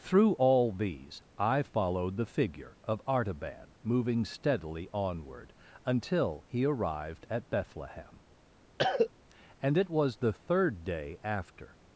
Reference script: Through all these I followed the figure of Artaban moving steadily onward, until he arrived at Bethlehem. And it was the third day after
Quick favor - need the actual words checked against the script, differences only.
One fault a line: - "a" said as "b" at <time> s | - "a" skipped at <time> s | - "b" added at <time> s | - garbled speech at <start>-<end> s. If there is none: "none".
none